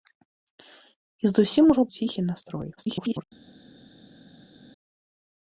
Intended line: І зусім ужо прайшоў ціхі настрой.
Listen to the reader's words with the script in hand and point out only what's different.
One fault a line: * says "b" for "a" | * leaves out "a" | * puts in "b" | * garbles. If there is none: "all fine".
* leaves out "прайшоў"
* garbles